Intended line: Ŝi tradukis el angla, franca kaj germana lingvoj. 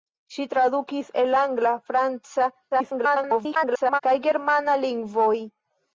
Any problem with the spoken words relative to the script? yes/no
yes